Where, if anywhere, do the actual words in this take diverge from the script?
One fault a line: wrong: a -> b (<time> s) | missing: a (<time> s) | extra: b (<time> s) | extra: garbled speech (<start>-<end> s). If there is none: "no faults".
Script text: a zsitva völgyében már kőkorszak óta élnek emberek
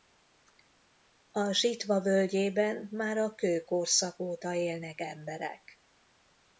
extra: a (3.2 s)